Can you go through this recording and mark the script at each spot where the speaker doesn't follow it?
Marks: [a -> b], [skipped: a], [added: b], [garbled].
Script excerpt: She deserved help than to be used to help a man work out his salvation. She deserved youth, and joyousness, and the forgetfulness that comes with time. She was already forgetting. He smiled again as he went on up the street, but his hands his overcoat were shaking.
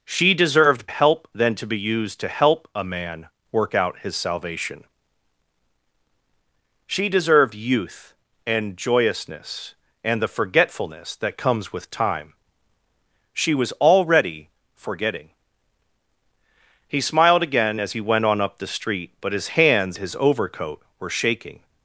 She deserved help than to be used to help a man work out his salvation. She deserved youth, and joyousness, and the forgetfulness that comes with time. She was already forgetting. He smiled again as he went on up the street, but his hands his overcoat were shaking.